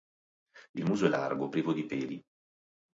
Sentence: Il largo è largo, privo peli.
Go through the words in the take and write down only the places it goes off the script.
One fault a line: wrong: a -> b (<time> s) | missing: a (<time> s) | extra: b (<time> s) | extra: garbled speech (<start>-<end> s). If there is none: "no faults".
wrong: largo -> muso (0.8 s)
extra: di (1.7 s)